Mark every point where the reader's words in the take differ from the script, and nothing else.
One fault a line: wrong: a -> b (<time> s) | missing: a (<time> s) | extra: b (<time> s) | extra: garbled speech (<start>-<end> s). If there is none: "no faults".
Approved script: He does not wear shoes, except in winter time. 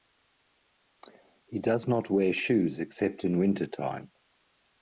no faults